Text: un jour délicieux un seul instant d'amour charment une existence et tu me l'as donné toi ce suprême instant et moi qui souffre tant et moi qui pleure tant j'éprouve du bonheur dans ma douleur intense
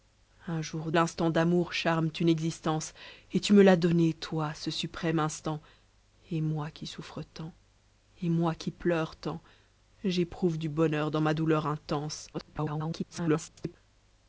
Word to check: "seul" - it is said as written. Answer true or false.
false